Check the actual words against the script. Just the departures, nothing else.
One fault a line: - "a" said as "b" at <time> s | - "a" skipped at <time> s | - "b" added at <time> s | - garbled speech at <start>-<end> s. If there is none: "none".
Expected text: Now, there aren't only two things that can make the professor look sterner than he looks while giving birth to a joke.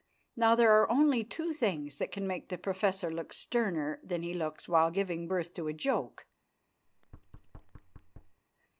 - "aren't" said as "are" at 0.7 s